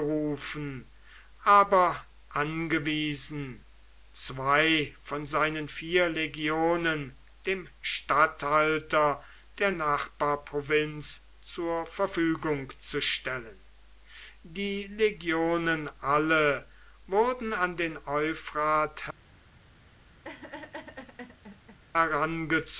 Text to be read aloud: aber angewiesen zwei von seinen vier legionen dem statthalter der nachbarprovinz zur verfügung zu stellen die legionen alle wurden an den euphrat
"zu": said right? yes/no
yes